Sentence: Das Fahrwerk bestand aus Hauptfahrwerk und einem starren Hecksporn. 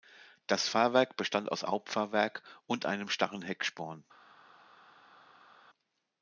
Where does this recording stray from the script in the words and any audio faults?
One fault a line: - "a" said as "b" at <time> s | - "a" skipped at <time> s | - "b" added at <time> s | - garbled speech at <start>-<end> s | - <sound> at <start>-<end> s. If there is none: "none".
none